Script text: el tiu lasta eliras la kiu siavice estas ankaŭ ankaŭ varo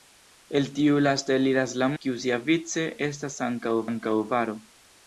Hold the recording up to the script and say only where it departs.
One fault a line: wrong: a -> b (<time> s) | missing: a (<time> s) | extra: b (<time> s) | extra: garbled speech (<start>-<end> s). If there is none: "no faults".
no faults